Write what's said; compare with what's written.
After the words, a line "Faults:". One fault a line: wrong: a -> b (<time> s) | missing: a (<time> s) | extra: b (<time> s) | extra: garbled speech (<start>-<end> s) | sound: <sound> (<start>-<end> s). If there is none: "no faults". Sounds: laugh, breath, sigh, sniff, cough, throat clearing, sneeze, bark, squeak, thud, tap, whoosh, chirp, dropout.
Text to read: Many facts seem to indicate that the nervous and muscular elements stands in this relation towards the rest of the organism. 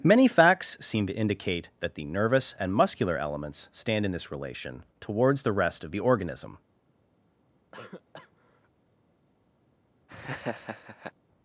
Many facts seem to indicate that the nervous and muscular elements stand in this relation towards the rest of the organism.
Faults:
wrong: stands -> stand (3.7 s)
sound: cough (7.7-8.7 s)
sound: laugh (10.1-11.1 s)